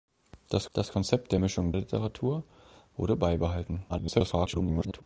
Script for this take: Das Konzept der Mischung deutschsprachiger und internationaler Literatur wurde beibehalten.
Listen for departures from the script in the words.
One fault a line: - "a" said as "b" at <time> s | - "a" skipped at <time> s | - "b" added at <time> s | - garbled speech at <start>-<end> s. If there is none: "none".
- "das" added at 0.7 s
- "deutschsprachiger und internationaler" skipped at 1.7 s
- garbled speech at 3.9-5.0 s